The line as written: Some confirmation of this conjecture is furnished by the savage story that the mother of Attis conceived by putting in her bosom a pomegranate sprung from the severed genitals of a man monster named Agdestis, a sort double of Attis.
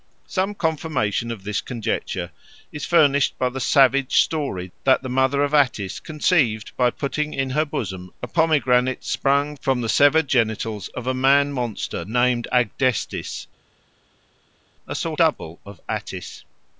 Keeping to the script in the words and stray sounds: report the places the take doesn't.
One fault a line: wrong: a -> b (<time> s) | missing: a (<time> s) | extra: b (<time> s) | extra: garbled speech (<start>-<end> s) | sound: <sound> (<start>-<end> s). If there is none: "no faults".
no faults